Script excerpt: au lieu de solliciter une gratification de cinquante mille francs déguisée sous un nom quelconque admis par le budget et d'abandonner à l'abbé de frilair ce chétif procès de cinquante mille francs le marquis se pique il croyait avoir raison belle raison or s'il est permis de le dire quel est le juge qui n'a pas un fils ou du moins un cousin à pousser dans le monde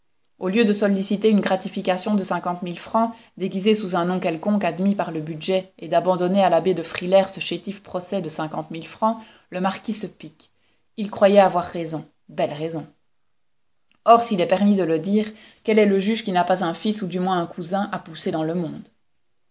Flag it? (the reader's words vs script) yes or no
no